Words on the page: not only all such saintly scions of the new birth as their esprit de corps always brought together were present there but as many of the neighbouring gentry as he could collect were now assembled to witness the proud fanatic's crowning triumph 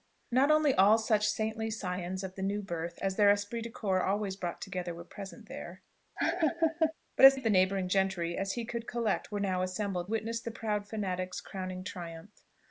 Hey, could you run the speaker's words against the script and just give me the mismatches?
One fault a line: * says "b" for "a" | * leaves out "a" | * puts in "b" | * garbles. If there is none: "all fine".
* leaves out "many"
* leaves out "to"